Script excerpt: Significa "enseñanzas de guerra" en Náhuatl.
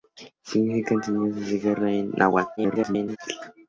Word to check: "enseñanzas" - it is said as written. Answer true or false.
true